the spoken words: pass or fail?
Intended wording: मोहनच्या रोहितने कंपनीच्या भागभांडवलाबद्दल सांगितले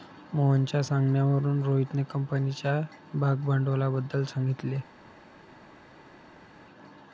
fail